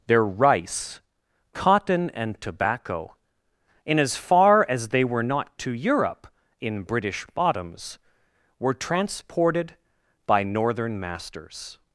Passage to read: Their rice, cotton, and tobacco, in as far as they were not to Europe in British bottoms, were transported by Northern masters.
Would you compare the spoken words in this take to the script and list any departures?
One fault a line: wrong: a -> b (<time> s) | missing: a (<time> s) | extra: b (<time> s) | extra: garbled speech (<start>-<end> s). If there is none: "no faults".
no faults